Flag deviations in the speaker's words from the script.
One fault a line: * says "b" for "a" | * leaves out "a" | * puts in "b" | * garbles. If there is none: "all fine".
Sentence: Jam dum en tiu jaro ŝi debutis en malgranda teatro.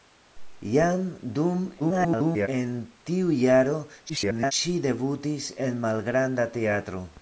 * garbles
* garbles